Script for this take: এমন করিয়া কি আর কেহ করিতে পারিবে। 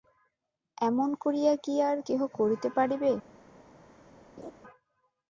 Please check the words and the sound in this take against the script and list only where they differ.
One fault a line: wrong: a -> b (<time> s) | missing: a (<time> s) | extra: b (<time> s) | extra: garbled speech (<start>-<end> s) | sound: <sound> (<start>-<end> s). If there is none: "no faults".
sound: laugh (4.4-4.5 s)